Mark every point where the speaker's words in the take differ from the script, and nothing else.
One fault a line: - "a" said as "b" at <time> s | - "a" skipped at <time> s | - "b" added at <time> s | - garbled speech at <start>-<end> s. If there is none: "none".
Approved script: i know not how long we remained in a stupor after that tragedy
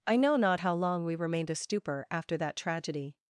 - "in" skipped at 1.5 s